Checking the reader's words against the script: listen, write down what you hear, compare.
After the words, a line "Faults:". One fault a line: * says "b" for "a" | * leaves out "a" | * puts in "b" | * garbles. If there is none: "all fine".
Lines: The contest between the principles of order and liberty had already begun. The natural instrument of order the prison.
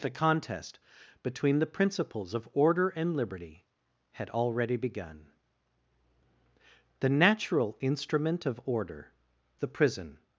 The contest between the principles of order and liberty had already begun. The natural instrument of order the prison.
Faults:
all fine